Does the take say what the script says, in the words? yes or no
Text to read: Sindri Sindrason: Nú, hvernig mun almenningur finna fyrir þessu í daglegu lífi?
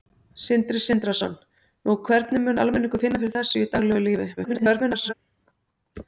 no